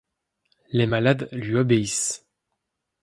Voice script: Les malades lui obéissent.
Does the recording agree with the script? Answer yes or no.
yes